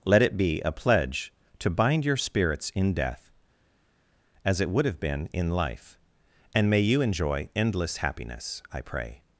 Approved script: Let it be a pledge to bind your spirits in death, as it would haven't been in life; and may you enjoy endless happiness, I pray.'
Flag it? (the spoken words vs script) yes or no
yes